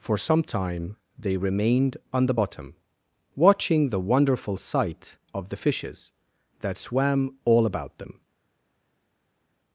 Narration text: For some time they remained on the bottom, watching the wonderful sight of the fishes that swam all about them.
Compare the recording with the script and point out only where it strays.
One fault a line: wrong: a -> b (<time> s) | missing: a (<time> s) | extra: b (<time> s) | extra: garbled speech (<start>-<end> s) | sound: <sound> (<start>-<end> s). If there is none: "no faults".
no faults